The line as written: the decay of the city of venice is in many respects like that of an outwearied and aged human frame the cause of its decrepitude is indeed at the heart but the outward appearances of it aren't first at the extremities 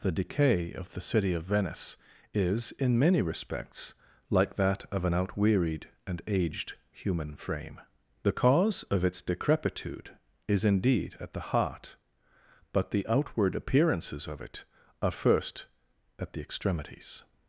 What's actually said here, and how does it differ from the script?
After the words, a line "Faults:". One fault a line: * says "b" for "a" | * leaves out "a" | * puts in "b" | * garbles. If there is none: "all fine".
the decay of the city of venice is in many respects like that of an outwearied and aged human frame the cause of its decrepitude is indeed at the heart but the outward appearances of it are first at the extremities
Faults:
* says "are" for "aren't"